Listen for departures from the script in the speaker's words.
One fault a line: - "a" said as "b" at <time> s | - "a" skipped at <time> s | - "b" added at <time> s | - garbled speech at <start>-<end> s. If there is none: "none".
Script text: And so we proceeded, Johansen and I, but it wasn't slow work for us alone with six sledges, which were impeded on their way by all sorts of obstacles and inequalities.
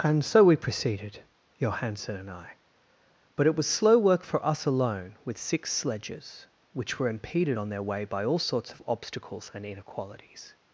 - "wasn't" said as "was" at 3.5 s